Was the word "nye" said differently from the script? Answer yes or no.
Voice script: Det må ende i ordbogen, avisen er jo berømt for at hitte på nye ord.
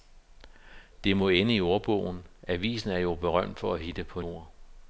yes